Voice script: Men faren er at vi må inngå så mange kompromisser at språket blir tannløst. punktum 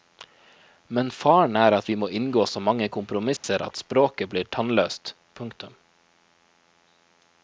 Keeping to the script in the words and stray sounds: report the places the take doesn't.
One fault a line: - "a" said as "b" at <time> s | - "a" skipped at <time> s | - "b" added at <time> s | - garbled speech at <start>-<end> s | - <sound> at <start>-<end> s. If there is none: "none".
- dropout at 3.4-3.4 s